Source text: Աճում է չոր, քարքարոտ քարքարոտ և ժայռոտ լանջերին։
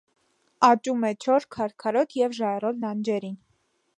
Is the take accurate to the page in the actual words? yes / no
no